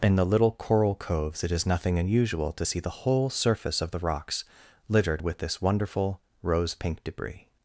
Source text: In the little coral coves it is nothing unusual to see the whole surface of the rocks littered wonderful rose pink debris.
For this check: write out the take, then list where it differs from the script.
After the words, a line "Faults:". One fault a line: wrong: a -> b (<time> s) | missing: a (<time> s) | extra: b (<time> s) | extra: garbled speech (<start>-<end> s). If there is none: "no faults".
In the little coral coves it is nothing unusual to see the whole surface of the rocks littered with this wonderful rose pink debris.
Faults:
extra: with this (5.2 s)